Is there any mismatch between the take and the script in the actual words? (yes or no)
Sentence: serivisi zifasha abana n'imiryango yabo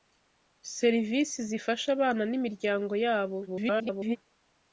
yes